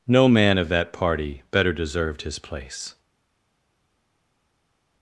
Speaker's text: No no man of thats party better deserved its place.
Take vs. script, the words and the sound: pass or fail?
fail